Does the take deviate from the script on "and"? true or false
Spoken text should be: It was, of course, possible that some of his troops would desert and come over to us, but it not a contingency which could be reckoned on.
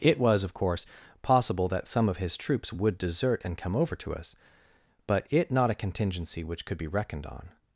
false